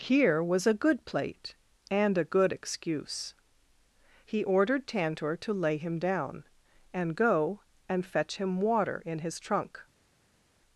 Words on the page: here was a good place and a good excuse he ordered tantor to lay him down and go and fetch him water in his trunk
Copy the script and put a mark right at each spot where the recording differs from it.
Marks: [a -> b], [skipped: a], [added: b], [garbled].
here was a good [place -> plate] and a good excuse he ordered tantor to lay him down and go and fetch him water in his trunk